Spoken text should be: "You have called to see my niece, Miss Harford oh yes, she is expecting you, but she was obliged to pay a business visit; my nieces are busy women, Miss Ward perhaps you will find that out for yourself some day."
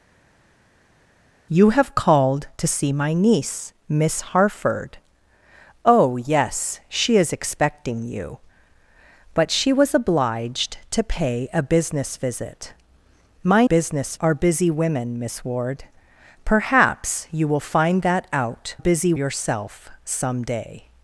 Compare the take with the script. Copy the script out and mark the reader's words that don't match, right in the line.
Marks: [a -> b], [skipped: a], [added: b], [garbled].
"You have called to see my niece, Miss Harford oh yes, she is expecting you, but she was obliged to pay a business visit; my [nieces -> business] are busy women, Miss Ward perhaps you will find that out [for -> busy] yourself some day."